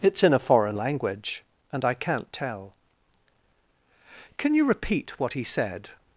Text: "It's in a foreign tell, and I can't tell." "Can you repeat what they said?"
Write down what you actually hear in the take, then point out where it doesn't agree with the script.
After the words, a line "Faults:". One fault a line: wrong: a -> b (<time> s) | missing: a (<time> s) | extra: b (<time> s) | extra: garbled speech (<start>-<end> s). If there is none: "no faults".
"It's in a foreign language, and I can't tell." "Can you repeat what he said?"
Faults:
wrong: tell -> language (0.8 s)
wrong: they -> he (5.3 s)